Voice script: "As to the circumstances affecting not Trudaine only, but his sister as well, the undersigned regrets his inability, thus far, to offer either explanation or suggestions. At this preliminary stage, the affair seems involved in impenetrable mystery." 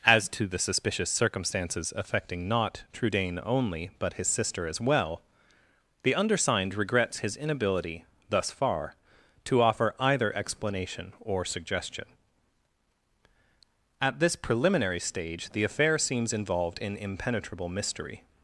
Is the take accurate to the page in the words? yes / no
no